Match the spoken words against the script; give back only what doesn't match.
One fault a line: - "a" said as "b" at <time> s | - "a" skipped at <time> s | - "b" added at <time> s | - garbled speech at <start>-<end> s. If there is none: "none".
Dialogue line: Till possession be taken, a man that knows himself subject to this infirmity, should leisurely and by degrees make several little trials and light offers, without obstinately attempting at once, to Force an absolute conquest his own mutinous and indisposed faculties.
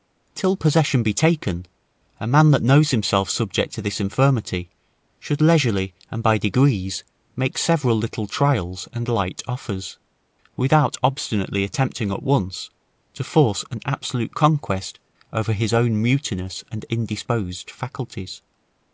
- "over" added at 15.3 s